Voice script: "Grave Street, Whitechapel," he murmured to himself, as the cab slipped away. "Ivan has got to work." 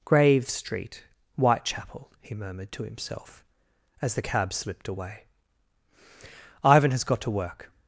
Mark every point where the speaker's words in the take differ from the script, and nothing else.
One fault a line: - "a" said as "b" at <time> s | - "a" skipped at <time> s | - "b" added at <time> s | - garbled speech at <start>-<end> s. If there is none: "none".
none